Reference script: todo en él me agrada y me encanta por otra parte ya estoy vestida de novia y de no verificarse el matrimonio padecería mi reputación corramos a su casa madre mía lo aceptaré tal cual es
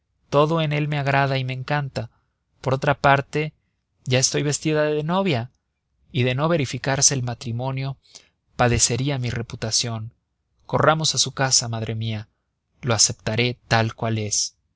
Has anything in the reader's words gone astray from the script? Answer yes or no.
no